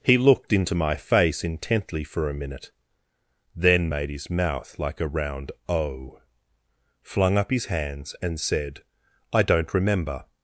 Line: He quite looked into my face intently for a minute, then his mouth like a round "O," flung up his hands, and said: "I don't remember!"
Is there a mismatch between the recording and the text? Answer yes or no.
yes